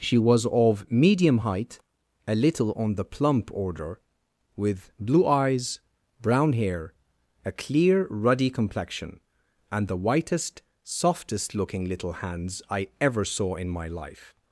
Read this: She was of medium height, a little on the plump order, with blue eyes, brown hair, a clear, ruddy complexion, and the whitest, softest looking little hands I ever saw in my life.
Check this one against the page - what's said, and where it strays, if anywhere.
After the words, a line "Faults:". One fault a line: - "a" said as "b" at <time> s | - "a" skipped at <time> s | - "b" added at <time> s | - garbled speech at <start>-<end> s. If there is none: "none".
She was of medium height, a little on the plump order, with blue eyes, brown hair, a clear, ruddy complexion, and the whitest, softest looking little hands I ever saw in my life.
Faults:
none